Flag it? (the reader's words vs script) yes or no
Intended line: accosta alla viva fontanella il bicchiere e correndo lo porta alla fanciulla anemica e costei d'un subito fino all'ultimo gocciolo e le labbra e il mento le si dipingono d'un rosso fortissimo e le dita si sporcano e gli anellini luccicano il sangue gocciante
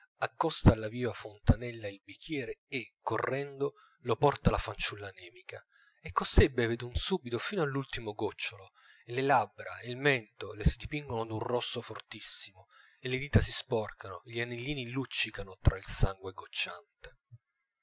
yes